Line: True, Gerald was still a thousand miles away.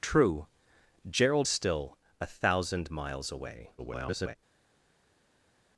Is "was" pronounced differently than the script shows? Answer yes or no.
yes